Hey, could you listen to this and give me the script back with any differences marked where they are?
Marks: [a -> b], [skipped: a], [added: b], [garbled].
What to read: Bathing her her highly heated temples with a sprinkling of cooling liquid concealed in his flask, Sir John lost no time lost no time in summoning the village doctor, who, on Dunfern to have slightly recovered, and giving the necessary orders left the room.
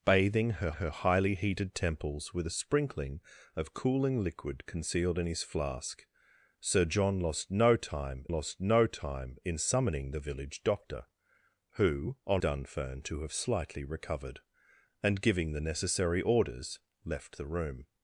Bathing her her highly heated temples with a sprinkling of cooling liquid concealed in his flask, Sir John lost no time lost no time in summoning the village doctor, who, on Dunfern to have slightly recovered, and giving the necessary orders left the room.